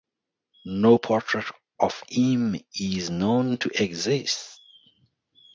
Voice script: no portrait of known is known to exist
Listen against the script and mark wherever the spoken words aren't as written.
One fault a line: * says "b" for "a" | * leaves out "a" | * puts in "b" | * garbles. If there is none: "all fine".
* says "him" for "known"